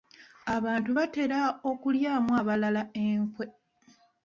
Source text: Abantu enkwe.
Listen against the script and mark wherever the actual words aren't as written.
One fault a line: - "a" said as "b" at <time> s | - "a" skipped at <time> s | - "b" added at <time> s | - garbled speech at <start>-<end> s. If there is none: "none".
- "batera okulyamu abalala" added at 1.0 s